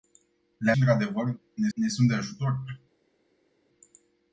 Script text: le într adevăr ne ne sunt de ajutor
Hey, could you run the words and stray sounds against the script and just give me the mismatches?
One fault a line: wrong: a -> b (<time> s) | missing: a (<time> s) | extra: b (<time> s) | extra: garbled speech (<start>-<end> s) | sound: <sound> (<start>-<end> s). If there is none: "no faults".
no faults